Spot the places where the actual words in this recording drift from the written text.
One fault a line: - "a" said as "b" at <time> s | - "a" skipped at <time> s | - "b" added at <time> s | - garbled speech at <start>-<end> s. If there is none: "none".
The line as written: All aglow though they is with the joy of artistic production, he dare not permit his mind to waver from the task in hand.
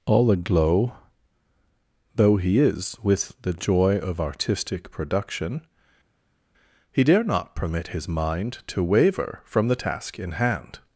- "they" said as "he" at 2.4 s